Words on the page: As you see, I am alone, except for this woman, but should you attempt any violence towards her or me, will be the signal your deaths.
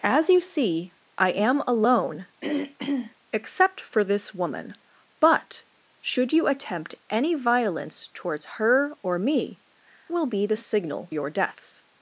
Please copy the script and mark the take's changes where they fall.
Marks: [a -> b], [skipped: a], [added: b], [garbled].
As you see, I am alone, except for this woman, but should you attempt any violence towards her or me, will be the signal your deaths.